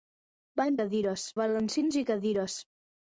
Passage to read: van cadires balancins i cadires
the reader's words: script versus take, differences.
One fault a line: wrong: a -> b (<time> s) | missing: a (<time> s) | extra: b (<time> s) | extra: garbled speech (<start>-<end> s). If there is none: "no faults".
no faults